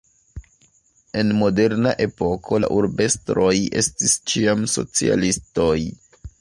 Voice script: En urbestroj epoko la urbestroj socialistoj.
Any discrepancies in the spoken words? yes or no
yes